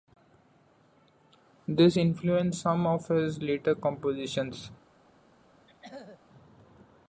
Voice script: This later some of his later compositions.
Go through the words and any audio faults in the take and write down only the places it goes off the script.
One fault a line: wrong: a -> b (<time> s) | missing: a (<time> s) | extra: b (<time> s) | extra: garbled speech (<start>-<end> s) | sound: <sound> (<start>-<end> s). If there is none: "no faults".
wrong: later -> influenced (2.0 s)
sound: throat clearing (5.7-6.2 s)